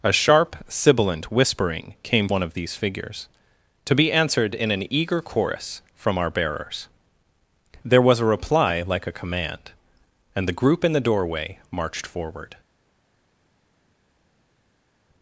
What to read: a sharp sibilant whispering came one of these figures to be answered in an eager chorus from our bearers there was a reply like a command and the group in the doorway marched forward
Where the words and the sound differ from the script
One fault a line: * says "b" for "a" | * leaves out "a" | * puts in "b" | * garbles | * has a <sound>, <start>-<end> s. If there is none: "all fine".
all fine